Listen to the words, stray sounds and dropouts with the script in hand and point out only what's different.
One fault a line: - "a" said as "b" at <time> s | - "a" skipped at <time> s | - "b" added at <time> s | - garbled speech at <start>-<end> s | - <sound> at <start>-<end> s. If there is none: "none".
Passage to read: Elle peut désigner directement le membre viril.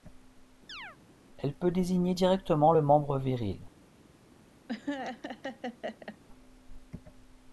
- chirp at 0.7-1.0 s
- laugh at 4.7-6.2 s